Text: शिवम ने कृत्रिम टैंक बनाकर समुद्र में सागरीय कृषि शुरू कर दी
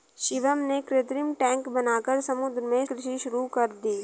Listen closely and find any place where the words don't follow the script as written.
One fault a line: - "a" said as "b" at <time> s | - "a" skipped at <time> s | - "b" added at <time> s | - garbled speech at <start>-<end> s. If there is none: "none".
- "सागरीय" skipped at 2.9 s